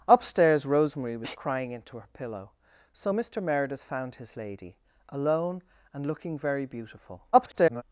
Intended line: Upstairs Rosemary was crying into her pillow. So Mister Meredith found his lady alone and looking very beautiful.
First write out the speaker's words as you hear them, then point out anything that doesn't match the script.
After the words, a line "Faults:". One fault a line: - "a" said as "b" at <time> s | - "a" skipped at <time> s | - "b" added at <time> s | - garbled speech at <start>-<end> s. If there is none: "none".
Upstairs Rosemary was crying into her pillow. So Mister Meredith found his lady alone and looking very beautiful. [garbled]
Faults:
- garbled speech at 7.3-7.8 s